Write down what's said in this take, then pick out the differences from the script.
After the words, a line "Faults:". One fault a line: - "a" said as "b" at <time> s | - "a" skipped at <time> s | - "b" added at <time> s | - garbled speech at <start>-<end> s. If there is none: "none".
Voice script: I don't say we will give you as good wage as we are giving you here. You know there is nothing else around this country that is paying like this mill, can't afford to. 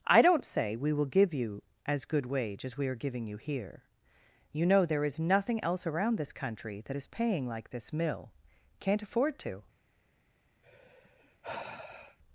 I don't say we will give you as good wage as we are giving you here. You know there is nothing else around this country that is paying like this mill, can't afford to.
Faults:
none